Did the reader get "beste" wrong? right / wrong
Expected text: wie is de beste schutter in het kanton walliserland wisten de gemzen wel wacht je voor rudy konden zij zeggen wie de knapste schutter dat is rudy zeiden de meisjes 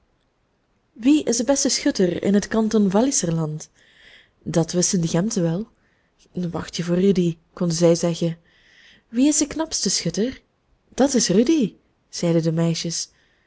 right